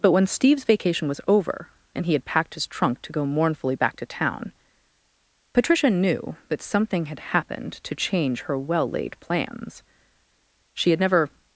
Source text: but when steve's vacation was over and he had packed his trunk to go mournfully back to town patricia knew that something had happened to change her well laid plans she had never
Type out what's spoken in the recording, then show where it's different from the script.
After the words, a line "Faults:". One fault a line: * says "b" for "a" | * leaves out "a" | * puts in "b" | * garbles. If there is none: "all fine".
but when steve's vacation was over and he had packed his trunk to go mournfully back to town patricia knew that something had happened to change her well laid plans she had never
Faults:
all fine